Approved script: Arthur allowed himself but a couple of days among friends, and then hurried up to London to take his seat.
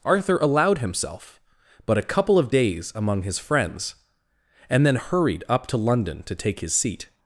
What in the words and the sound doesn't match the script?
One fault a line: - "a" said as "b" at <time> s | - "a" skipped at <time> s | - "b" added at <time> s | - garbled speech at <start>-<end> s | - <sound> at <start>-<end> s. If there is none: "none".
- "his" added at 3.2 s